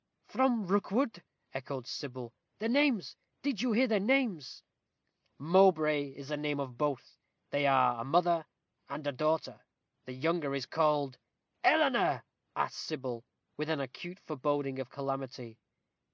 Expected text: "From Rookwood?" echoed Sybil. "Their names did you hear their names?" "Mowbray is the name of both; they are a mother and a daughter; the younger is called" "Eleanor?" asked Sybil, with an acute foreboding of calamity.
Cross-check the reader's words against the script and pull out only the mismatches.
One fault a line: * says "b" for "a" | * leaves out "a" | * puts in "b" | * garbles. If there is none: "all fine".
all fine